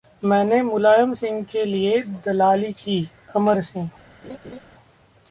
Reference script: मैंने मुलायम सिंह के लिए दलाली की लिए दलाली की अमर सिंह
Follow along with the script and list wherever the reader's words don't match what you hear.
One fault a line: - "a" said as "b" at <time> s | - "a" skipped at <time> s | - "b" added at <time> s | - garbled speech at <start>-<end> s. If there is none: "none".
- "लिए दलाली की" skipped at 3.0 s